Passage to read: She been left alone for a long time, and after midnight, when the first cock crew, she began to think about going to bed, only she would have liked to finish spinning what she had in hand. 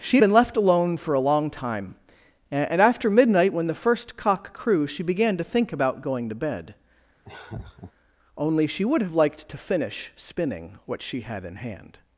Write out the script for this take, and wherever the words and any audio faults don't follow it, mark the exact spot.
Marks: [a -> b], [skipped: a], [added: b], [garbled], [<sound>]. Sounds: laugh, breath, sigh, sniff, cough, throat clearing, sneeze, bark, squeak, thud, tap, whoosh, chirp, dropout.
She been left alone for a long time, and after midnight, when the first cock crew, she began to think about going to bed, [laugh] only she would have liked to finish spinning what she had in hand.